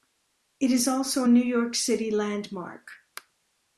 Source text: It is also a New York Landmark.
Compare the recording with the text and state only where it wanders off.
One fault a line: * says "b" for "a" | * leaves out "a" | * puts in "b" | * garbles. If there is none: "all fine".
* puts in "City"